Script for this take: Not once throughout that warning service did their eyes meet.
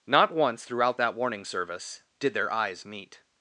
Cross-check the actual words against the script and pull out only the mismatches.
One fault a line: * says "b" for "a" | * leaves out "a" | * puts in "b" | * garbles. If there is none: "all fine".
all fine